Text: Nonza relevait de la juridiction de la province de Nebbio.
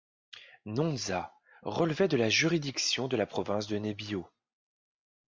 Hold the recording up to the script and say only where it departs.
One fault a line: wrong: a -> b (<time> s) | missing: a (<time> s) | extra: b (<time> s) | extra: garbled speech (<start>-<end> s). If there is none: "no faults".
no faults